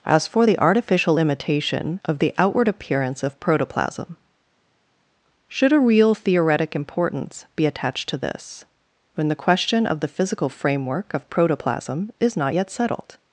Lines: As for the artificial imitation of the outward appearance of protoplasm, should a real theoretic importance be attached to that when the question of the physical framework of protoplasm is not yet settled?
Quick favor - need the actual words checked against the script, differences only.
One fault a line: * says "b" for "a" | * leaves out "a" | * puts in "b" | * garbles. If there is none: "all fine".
* says "this" for "that"